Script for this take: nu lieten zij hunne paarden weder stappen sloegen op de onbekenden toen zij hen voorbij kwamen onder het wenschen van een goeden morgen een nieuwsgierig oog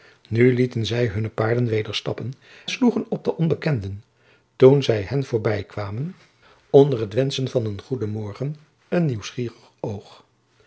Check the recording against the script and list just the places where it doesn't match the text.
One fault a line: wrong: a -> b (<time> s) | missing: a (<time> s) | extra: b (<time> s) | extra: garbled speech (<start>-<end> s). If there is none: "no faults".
no faults